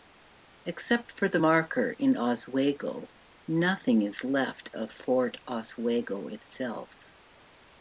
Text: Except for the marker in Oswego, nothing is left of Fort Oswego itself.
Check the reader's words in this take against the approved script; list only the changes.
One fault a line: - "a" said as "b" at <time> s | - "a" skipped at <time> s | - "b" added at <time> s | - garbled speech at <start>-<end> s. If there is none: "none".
none